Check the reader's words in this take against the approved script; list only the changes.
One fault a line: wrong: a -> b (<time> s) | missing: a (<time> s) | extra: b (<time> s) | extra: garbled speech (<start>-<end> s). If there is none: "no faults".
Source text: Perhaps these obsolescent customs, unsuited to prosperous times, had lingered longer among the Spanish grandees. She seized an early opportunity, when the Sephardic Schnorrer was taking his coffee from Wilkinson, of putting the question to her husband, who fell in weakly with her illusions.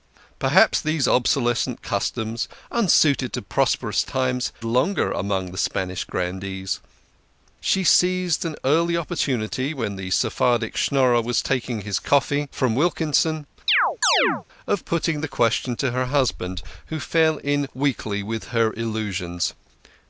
missing: had lingered (4.5 s)